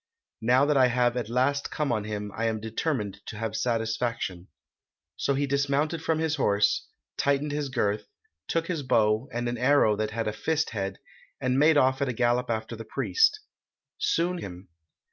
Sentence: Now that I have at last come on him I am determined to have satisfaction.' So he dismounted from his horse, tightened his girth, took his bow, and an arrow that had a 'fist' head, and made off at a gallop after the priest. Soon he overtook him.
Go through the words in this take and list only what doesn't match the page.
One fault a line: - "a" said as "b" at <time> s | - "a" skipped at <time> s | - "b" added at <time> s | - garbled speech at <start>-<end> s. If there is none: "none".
- "he overtook" skipped at 14.4 s